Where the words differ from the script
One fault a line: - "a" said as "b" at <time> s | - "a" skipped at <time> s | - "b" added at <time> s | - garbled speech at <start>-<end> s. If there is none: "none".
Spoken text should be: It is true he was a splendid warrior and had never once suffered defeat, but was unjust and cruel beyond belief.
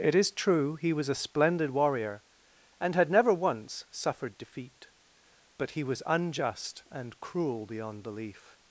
- "he" added at 5.7 s